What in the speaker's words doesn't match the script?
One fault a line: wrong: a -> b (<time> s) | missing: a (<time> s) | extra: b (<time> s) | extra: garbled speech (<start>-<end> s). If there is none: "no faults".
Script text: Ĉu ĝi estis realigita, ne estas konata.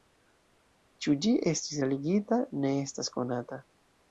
no faults